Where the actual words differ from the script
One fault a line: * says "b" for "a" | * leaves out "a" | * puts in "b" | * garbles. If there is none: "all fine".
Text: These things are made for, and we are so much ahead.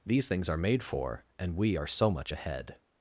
all fine